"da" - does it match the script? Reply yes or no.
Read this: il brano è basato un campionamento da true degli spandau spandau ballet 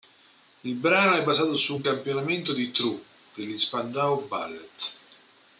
no